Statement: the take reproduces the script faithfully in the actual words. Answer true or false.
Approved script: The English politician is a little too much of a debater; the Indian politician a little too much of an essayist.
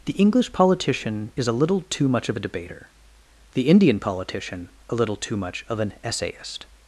true